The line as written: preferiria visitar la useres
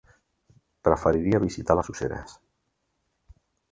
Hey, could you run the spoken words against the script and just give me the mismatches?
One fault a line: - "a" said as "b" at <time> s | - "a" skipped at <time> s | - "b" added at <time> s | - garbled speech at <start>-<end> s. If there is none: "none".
- "la" said as "les" at 1.8 s